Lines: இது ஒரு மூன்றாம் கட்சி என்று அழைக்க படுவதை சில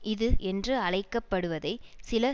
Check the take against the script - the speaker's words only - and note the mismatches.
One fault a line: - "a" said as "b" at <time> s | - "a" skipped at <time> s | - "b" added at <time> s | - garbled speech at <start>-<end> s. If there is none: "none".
- "ஒரு மூன்றாம் கட்சி" skipped at 0.3 s